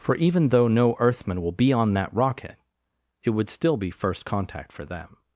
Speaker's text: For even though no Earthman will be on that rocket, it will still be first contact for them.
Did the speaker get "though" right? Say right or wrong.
right